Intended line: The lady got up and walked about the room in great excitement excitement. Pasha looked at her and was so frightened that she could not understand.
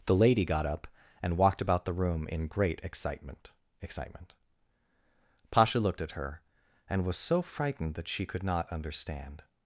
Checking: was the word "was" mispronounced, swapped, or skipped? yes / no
no